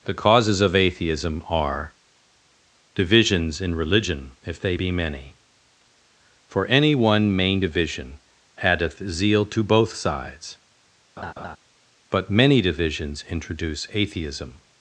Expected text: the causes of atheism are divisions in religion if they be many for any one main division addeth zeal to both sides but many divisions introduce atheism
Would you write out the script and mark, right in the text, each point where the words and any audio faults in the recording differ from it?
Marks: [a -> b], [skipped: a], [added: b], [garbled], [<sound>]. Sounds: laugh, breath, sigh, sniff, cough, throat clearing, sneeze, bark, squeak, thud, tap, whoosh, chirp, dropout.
the causes of atheism are divisions in religion if they be many for any one main division addeth zeal to both sides [laugh] but many divisions introduce atheism